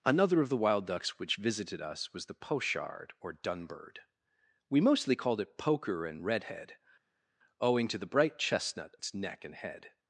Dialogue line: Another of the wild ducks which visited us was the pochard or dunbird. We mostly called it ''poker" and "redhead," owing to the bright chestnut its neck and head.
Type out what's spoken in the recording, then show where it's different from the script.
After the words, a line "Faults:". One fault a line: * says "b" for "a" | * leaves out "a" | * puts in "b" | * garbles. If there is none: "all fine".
Another of the wild ducks which visited us was the pochard or dunbird. We mostly called it ''poker" and "redhead," owing to the bright chestnut its neck and head.
Faults:
all fine